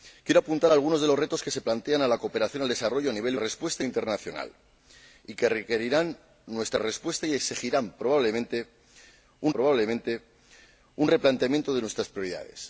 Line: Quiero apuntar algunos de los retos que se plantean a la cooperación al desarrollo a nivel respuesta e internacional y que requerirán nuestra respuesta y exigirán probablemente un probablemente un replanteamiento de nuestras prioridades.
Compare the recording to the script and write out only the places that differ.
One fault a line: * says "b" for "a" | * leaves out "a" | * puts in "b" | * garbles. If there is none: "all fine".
all fine